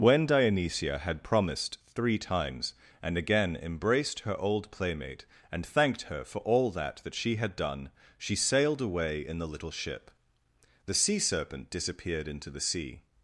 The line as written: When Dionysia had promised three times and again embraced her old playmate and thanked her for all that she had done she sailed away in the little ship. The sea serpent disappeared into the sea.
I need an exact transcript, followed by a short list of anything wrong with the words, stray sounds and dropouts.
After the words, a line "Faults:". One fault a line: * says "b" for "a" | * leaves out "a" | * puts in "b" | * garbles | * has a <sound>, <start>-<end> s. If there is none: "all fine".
When Dionysia had promised three times and again embraced her old playmate and thanked her for all that that she had done she sailed away in the little ship. The sea serpent disappeared into the sea.
Faults:
* puts in "that"